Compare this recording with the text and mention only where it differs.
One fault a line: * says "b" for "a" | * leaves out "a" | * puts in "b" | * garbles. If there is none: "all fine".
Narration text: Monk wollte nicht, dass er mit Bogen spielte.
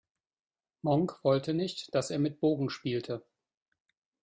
all fine